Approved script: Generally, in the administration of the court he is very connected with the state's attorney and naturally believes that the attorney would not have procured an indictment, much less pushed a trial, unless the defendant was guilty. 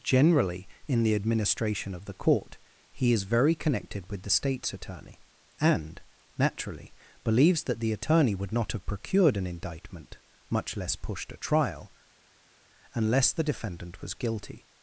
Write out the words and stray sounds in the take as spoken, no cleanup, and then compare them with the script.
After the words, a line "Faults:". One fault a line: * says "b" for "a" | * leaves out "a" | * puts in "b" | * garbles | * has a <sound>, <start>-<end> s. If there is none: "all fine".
Generally, in the administration of the court he is very connected with the state's attorney and naturally believes that the attorney would not have procured an indictment, much less pushed a trial, unless the defendant was guilty.
Faults:
all fine